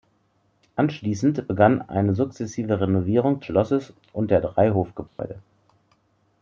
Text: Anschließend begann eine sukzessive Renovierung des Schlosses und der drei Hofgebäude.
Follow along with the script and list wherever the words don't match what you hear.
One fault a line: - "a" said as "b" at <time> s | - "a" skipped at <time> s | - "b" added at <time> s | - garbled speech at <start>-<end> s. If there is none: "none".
- "des" skipped at 3.4 s